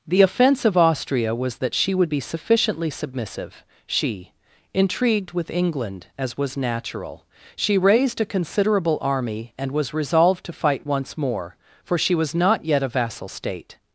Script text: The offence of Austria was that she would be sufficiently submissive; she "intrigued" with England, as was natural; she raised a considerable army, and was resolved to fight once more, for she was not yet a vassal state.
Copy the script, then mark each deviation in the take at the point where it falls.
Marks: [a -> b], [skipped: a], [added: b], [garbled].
The offence of Austria was that she would be sufficiently submissive; she "intrigued" with England, as was natural; she raised a considerable army, and was resolved to fight once more, for she was not yet a vassal state.